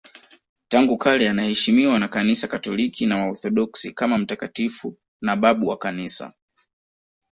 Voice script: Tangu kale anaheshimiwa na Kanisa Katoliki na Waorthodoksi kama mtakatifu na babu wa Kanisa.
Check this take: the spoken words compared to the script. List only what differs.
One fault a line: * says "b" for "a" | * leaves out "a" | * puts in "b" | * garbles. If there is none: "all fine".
all fine